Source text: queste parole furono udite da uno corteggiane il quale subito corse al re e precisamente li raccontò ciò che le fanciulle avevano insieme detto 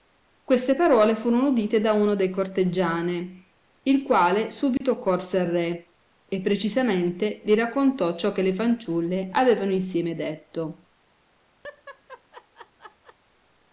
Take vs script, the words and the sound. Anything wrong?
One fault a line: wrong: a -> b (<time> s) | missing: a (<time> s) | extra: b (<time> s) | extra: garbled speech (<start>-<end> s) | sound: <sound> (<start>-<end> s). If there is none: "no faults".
extra: dei (2.1 s)
sound: dropout (4.8-4.8 s)
sound: laugh (11.6-13.2 s)